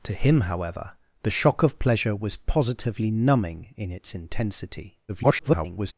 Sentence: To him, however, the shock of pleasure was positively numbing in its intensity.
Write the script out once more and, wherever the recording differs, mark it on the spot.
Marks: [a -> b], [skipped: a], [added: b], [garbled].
To him, however, the shock of pleasure was positively numbing in its intensity. [garbled]